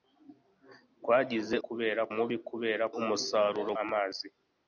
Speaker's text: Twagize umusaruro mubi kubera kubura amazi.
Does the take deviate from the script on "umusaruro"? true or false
true